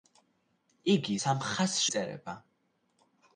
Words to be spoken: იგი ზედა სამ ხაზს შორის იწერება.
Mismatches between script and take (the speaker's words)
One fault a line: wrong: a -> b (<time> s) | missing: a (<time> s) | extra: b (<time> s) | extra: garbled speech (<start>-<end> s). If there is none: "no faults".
missing: ზედა (1.2 s)
missing: შორის (1.8 s)